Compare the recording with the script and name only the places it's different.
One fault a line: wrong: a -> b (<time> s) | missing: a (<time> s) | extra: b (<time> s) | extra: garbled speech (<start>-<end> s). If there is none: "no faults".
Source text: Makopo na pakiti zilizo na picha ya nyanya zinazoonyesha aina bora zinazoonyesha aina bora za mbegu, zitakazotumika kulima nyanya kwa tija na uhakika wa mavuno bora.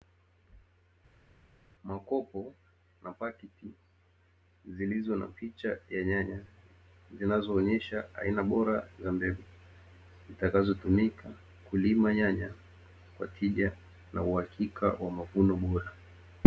missing: zinazoonyesha aina bora (8.9 s)